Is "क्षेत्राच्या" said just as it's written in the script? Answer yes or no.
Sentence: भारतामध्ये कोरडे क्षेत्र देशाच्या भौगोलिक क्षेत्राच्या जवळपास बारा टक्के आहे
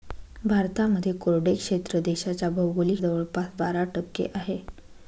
no